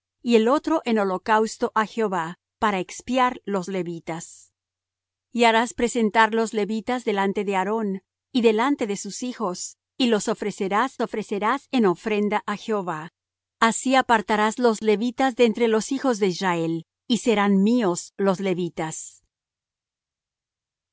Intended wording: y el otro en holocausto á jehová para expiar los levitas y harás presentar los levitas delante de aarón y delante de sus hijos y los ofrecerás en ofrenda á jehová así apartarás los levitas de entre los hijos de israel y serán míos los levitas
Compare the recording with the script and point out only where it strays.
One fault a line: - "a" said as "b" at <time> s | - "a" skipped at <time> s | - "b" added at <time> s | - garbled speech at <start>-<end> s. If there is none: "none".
- "ofrecerás" added at 11.0 s